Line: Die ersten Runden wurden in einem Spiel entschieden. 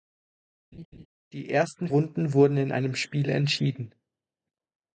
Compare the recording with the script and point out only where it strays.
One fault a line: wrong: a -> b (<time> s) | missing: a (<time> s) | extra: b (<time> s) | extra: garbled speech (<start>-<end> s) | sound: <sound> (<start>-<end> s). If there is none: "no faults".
sound: laugh (0.7-1.1 s)